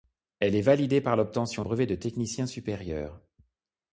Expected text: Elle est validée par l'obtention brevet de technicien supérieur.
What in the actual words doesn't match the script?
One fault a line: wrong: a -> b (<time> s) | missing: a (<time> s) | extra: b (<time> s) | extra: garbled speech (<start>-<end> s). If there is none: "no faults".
no faults